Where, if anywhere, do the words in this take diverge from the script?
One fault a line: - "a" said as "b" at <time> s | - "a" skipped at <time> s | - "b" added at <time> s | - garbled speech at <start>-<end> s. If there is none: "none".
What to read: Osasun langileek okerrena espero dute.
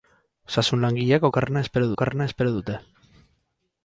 - "okerrena espero" added at 1.9 s